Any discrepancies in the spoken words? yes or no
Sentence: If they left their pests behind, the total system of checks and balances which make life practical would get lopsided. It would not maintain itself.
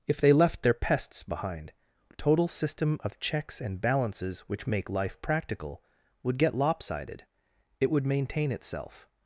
yes